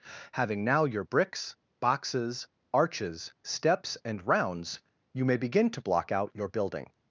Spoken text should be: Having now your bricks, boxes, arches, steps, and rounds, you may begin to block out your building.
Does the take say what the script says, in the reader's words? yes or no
yes